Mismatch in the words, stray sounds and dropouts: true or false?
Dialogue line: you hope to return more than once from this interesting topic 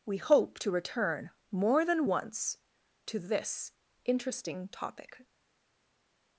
true